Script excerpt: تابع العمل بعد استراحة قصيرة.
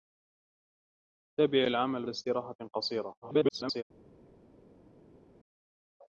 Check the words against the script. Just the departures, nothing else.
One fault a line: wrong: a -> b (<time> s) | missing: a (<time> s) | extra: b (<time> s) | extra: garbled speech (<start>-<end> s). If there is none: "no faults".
missing: بعد (2.1 s)
extra: garbled speech (3.2-3.8 s)